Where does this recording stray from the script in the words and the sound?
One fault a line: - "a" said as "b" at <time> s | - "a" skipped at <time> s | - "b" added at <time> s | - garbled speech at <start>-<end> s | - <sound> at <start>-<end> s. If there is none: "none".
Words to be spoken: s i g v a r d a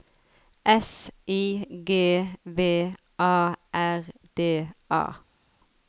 none